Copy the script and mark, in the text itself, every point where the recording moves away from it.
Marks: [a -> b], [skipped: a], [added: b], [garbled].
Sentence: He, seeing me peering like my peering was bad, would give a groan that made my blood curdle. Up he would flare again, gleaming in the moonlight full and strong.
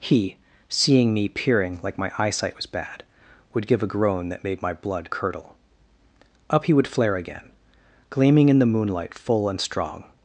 He, seeing me peering like my [peering -> eyesight] was bad, would give a groan that made my blood curdle. Up he would flare again, gleaming in the moonlight full and strong.